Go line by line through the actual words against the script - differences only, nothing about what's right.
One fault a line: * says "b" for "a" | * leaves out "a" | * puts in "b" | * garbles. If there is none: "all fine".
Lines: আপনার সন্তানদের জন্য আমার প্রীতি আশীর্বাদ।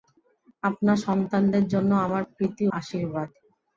all fine